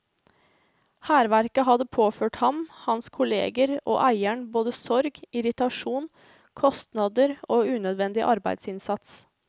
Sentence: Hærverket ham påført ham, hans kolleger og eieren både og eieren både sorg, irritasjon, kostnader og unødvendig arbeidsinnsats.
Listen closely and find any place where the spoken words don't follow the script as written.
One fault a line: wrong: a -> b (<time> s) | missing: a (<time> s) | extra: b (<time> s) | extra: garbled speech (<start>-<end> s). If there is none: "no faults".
wrong: ham -> hadde (1.6 s)
missing: og eieren både (4.7 s)